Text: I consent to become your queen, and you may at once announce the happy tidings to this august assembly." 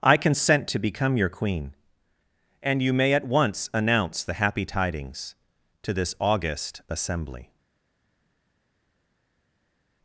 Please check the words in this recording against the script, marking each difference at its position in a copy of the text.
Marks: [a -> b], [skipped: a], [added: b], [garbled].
I consent to become your queen, and you may at once announce the happy tidings to this august assembly."